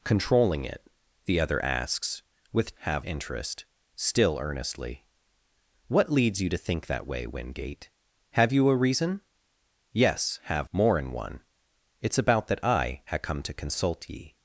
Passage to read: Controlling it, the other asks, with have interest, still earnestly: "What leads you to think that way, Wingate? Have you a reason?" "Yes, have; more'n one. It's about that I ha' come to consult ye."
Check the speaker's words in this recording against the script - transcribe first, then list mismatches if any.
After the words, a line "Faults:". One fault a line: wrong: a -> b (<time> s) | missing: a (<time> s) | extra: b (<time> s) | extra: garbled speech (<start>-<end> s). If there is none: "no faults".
Controlling it, the other asks, with have interest, still earnestly: "What leads you to think that way, Wingate? Have you a reason?" "Yes, have; more'n one. It's about that I ha' come to consult ye."
Faults:
no faults